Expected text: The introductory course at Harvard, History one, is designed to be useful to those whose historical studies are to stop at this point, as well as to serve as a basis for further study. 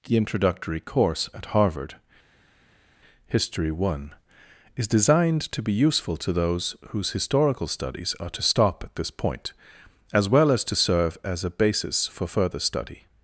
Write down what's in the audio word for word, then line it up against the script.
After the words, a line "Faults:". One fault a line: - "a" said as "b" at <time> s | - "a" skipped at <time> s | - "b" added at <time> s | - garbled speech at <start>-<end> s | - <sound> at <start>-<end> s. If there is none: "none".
The introductory course at Harvard, History one, is designed to be useful to those whose historical studies are to stop at this point, as well as to serve as a basis for further study.
Faults:
none